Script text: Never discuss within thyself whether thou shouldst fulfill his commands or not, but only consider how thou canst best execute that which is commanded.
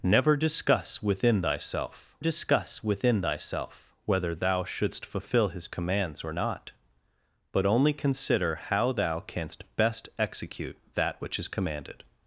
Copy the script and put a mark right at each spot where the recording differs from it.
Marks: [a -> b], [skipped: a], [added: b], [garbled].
Never discuss within thyself [added: discuss within thyself] whether thou shouldst fulfill his commands or not, but only consider how thou canst best execute that which is commanded.